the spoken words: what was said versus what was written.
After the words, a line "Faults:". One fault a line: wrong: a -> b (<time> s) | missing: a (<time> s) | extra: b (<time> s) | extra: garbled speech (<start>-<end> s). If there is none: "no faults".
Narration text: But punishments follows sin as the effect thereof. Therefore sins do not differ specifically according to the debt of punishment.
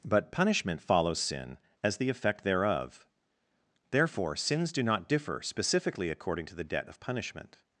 But punishment follows sin as the effect thereof. Therefore sins do not differ specifically according to the debt of punishment.
Faults:
wrong: punishments -> punishment (0.3 s)